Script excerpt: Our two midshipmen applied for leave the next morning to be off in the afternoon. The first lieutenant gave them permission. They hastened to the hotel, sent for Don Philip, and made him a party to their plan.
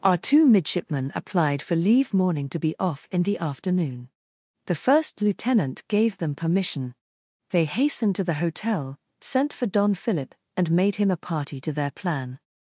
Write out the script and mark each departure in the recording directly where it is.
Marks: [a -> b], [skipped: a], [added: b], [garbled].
Our two midshipmen applied for leave [skipped: the next] morning to be off in the afternoon. The first lieutenant gave them permission. They hastened to the hotel, sent for Don Philip, and made him a party to their plan.